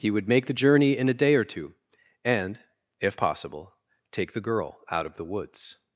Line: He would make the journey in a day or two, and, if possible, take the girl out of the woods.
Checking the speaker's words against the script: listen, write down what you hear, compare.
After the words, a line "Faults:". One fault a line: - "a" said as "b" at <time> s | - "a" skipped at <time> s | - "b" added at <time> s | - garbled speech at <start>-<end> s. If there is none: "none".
He would make the journey in a day or two, and, if possible, take the girl out of the woods.
Faults:
none